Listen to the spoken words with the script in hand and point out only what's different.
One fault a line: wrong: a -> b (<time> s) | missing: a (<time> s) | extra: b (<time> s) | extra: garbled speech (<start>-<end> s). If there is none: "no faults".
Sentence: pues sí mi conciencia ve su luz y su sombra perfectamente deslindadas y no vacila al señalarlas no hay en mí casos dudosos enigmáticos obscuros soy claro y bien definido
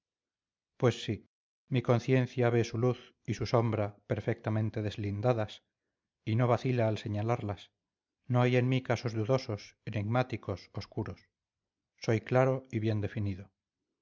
no faults